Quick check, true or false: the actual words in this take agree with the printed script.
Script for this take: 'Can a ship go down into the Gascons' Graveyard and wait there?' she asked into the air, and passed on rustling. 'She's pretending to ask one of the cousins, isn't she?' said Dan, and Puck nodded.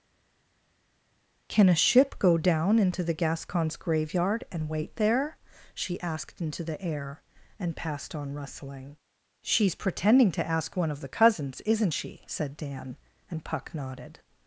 true